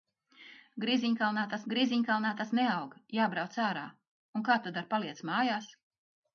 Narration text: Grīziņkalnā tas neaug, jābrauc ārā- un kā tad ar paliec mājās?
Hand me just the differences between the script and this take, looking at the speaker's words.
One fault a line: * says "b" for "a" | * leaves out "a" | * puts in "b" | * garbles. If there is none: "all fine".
* puts in "grīziņkalnā tas"